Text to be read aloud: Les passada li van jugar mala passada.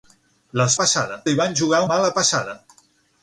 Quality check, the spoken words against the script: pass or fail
pass